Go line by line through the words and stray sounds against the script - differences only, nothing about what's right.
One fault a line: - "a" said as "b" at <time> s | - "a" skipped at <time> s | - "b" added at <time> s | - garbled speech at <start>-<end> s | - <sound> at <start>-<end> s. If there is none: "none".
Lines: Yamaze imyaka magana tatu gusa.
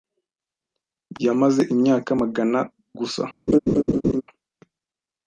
- "tatu" skipped at 2.6 s
- laugh at 3.5-4.2 s